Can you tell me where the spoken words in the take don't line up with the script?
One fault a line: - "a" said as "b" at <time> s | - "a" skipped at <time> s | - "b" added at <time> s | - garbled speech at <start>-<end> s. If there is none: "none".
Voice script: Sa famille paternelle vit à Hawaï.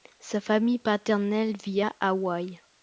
none